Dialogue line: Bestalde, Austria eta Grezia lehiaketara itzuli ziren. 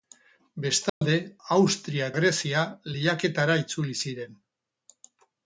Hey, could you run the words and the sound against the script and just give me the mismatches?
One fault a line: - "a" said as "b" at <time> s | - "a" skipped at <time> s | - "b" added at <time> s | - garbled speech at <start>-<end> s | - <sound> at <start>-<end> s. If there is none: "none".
- dropout at 0.9-1.0 s
- "eta" skipped at 2.1 s